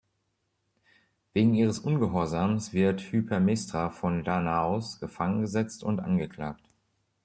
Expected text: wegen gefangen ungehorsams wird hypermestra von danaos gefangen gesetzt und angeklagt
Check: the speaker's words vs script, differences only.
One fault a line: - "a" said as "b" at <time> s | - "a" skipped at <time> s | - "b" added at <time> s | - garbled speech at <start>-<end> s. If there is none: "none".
- "gefangen" said as "ihres" at 1.5 s